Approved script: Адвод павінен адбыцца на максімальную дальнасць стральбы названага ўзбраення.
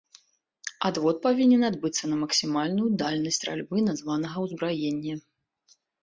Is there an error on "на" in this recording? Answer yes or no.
no